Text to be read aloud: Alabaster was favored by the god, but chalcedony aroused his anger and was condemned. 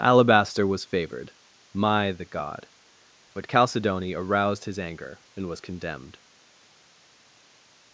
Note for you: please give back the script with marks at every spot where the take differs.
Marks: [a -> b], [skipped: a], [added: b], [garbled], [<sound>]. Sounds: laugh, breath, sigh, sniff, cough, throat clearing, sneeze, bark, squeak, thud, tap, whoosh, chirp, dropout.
Alabaster was favored [by -> my] the god, but chalcedony aroused his anger and was condemned.